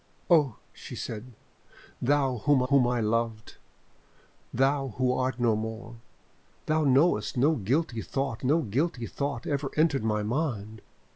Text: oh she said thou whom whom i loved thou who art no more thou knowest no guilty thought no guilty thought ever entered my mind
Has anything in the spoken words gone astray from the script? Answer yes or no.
no